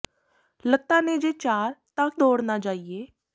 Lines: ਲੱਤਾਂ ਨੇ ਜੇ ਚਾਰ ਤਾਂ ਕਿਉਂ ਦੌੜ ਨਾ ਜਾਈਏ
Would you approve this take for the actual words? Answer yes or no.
no